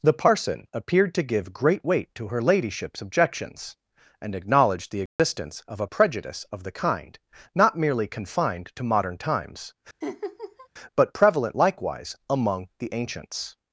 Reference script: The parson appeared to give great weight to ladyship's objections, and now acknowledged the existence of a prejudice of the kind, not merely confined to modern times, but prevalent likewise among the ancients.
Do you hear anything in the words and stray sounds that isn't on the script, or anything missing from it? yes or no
yes